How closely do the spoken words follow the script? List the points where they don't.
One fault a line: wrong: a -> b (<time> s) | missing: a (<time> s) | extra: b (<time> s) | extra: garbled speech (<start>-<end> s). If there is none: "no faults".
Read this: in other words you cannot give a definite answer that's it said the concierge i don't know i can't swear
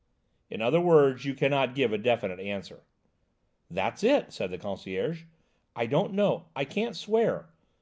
no faults